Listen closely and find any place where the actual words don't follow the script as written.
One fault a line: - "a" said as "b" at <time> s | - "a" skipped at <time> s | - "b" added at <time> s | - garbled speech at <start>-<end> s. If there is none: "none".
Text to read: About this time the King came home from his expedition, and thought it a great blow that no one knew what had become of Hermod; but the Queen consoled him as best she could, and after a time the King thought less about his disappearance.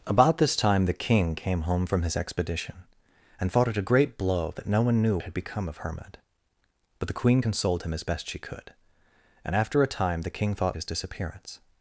- "what" skipped at 5.2 s
- "less about" skipped at 10.8 s